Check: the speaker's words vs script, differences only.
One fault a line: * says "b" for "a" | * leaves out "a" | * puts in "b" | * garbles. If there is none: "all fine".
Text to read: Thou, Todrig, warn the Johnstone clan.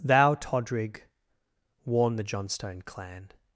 all fine